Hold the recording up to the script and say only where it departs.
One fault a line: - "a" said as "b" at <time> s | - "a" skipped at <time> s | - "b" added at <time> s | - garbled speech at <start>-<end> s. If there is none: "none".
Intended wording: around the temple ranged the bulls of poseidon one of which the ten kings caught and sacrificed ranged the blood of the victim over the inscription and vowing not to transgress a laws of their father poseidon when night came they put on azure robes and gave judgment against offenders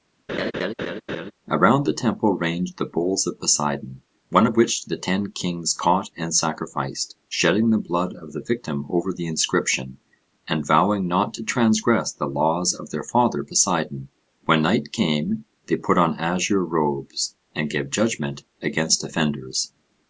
- "ranged" said as "shedding" at 7.3 s
- "a" said as "the" at 12.1 s